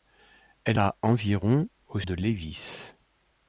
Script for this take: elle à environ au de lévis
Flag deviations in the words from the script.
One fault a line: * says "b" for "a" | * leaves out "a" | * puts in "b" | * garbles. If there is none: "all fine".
all fine